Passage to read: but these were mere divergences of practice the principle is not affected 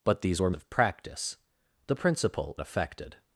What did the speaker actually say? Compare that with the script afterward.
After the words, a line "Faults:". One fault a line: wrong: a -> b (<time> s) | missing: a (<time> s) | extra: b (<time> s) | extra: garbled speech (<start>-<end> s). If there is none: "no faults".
but these were of practice the principle affected
Faults:
missing: mere divergences (0.5 s)
missing: is not (2.6 s)